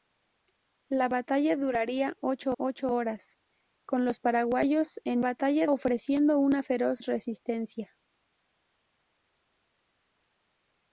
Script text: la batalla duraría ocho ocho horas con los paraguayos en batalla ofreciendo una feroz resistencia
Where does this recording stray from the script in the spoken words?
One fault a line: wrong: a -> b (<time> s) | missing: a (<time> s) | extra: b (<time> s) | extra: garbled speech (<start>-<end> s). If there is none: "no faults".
no faults